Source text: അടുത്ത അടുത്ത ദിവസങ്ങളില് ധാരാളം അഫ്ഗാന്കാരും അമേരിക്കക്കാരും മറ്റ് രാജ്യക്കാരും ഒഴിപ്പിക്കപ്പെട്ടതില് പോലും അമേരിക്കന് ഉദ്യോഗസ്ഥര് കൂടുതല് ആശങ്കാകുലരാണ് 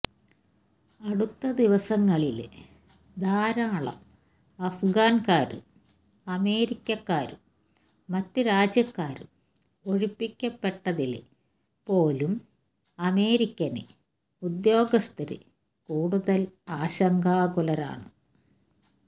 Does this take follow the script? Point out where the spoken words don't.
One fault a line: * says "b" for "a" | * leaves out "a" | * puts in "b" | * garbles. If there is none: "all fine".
* leaves out "അടുത്ത"